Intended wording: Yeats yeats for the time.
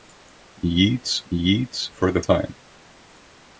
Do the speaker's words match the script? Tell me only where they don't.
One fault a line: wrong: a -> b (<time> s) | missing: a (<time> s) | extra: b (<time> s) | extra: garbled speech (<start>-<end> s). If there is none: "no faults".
no faults